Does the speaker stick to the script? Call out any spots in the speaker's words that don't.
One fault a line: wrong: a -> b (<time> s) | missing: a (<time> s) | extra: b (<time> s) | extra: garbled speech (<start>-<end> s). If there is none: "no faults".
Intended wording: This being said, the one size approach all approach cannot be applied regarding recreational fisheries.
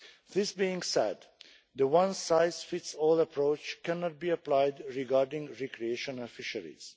wrong: approach -> fits (2.6 s)